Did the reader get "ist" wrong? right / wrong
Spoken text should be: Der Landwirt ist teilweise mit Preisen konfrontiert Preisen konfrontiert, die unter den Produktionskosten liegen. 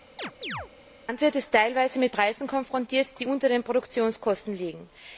right